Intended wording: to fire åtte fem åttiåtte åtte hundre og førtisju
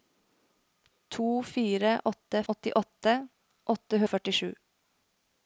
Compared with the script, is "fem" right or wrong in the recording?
wrong